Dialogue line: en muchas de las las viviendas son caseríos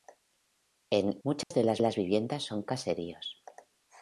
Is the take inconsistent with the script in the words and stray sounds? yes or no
yes